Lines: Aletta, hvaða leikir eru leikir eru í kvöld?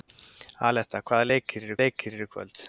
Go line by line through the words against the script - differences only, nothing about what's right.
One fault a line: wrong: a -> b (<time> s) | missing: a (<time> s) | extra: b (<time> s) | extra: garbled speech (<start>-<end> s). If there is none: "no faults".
no faults